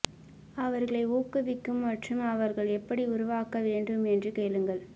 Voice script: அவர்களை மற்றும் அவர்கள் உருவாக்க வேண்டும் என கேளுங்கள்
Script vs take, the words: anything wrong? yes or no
yes